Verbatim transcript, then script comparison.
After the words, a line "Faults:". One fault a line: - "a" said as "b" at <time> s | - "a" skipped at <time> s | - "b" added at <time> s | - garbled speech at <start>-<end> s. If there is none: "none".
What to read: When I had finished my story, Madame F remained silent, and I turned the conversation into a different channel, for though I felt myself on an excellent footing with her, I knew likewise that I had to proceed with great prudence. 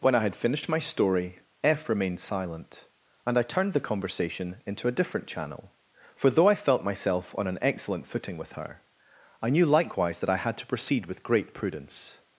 When I had finished my story, F remained silent, and I turned the conversation into a different channel, for though I felt myself on an excellent footing with her, I knew likewise that I had to proceed with great prudence.
Faults:
- "Madame" skipped at 1.4 s